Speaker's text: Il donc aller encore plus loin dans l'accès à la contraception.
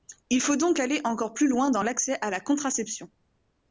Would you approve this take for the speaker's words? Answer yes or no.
no